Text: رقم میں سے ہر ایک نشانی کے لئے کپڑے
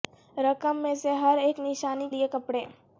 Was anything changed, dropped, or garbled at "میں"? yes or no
no